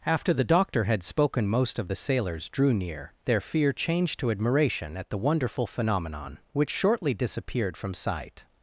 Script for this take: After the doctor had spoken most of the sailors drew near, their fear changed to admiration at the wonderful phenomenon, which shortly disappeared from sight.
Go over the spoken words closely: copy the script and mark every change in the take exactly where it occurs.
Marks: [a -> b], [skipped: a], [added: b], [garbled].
After the doctor had spoken most of the sailors drew near, their fear changed to admiration at the wonderful phenomenon, which shortly disappeared from sight.